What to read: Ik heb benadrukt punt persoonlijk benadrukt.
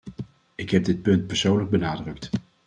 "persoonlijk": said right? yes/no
yes